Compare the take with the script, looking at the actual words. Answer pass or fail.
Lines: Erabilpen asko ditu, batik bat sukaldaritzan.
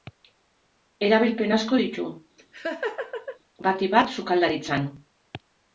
pass